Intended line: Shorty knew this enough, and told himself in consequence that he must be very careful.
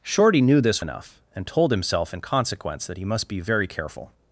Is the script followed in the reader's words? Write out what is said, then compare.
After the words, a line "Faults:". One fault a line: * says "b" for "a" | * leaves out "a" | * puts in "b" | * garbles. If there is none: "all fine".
Shorty knew this enough, and told himself in consequence that he must be very careful.
Faults:
all fine